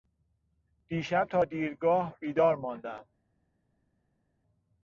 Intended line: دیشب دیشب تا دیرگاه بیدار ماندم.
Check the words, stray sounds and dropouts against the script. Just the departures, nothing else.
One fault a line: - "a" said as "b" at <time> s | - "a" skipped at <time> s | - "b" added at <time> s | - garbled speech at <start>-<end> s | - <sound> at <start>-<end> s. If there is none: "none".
- "دیشب" skipped at 1.3 s